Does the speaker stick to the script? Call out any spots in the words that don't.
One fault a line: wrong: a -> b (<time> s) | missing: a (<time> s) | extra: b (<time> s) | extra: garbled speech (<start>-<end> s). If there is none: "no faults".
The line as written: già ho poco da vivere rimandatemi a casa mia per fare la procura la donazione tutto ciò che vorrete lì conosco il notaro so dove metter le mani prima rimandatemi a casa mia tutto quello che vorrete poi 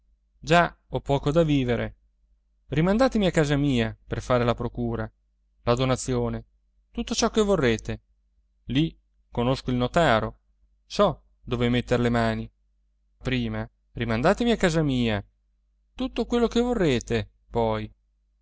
no faults